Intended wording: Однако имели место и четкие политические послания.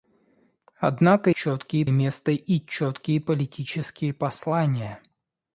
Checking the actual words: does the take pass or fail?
fail